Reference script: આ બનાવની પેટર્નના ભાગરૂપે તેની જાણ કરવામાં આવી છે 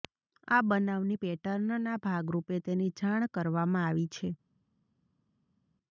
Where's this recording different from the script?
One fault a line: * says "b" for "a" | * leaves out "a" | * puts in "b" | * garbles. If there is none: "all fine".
all fine